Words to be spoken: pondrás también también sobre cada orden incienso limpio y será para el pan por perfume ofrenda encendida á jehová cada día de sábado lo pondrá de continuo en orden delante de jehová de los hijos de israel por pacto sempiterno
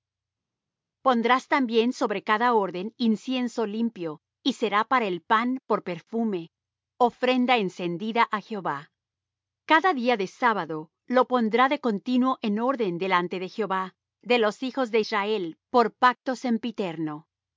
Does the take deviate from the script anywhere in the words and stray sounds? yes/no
yes